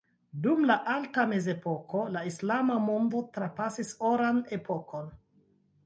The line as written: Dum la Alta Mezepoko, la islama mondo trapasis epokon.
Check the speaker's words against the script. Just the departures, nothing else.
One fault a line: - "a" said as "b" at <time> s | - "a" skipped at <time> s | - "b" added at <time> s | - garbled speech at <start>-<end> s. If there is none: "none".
- "oran" added at 4.2 s